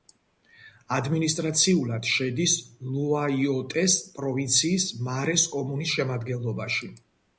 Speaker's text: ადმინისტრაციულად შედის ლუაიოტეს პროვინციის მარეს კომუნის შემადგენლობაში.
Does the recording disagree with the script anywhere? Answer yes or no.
no